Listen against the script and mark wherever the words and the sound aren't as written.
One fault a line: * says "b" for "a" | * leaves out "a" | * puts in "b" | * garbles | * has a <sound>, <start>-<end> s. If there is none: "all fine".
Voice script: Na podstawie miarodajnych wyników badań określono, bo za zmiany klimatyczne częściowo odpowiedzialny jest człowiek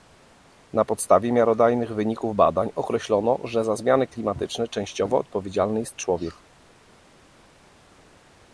* says "że" for "bo"